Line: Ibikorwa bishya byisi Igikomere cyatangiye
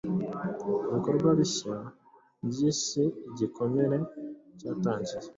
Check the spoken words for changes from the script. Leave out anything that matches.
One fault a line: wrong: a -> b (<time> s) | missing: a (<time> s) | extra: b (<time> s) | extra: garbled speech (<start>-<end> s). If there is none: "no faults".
no faults